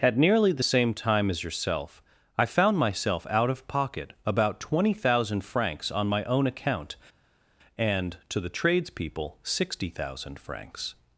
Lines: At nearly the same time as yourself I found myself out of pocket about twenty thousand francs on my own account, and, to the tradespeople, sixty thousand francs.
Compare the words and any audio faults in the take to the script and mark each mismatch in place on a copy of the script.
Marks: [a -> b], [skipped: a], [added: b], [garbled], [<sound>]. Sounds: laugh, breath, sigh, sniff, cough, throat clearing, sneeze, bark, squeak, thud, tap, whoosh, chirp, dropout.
At nearly the same time as yourself I found myself out of pocket about twenty thousand francs on my own account, and, to the tradespeople, sixty thousand francs.